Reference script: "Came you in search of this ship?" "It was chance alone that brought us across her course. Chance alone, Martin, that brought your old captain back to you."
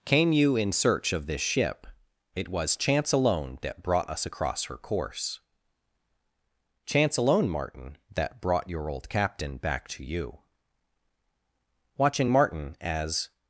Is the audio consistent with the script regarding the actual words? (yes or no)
no